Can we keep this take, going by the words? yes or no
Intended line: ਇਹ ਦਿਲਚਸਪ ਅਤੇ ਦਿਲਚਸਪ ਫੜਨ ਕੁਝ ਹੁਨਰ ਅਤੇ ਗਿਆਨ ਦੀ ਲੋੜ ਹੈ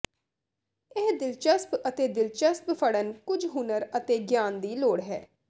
yes